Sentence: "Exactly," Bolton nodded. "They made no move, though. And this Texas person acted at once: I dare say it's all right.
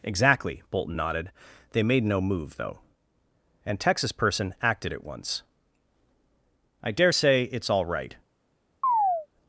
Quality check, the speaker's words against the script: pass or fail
fail